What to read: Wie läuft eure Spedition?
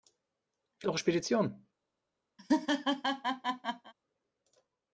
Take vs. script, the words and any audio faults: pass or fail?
fail